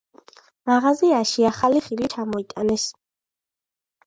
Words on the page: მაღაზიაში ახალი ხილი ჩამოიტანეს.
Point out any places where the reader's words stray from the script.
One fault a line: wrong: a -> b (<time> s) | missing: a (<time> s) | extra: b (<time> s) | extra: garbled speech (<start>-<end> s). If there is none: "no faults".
no faults